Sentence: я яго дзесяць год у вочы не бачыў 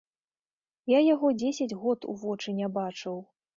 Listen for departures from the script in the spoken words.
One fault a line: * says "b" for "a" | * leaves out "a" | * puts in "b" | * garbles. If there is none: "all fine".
all fine